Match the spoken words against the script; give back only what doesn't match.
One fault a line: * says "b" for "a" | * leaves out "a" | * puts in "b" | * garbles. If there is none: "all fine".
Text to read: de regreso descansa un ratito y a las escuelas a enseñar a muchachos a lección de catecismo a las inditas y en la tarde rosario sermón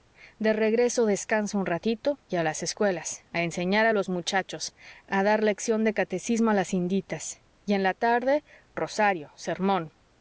* puts in "los"
* puts in "dar"